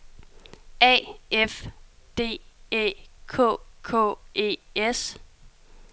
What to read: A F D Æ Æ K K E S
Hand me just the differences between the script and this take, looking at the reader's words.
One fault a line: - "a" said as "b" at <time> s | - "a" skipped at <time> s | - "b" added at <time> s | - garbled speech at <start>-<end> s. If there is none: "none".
- "Æ" skipped at 2.9 s